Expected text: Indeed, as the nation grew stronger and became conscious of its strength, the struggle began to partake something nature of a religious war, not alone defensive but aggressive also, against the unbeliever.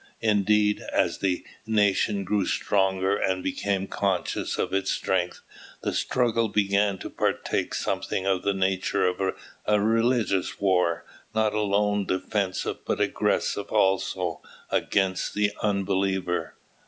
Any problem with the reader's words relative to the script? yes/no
yes